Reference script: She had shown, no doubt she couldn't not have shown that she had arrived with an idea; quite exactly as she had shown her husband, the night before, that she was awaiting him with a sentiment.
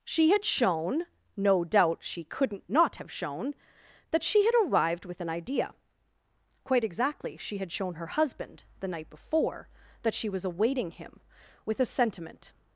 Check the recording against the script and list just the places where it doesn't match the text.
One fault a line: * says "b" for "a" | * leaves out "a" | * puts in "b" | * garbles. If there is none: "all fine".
* leaves out "as"